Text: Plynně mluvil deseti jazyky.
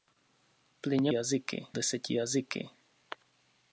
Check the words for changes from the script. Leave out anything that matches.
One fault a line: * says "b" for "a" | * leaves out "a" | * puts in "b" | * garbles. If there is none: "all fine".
* says "jazyky" for "mluvil"